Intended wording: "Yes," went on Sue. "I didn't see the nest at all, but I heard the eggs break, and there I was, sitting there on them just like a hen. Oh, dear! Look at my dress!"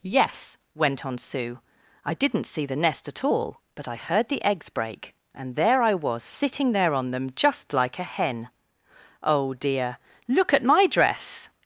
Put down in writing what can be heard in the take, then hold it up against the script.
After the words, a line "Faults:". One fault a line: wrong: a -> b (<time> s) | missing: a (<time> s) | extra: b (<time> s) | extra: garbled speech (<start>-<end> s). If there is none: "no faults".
"Yes," went on Sue. "I didn't see the nest at all, but I heard the eggs break, and there I was, sitting there on them just like a hen. Oh, dear! Look at my dress!"
Faults:
no faults